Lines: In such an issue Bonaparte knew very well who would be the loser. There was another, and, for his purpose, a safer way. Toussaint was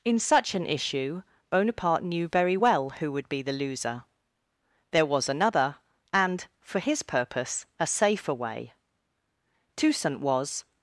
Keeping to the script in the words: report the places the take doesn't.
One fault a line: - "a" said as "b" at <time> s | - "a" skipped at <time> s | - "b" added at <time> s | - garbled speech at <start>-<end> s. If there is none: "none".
none